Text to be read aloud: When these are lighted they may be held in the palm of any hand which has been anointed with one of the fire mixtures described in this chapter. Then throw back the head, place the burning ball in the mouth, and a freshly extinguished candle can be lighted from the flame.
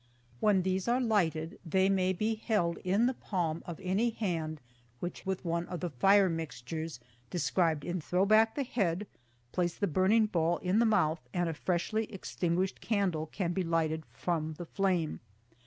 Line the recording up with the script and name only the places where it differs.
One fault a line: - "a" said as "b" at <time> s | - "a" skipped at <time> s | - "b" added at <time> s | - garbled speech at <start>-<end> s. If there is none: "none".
- "has been anointed" skipped at 5.2 s
- "this chapter Then" skipped at 8.0 s